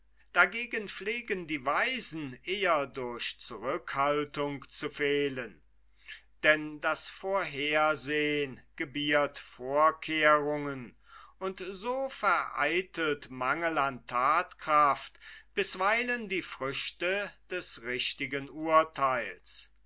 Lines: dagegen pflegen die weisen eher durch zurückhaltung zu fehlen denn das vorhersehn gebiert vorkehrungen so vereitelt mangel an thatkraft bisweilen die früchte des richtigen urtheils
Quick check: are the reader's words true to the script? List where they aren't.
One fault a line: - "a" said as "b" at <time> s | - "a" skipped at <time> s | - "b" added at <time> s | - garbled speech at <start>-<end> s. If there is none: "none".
- "und" added at 11.4 s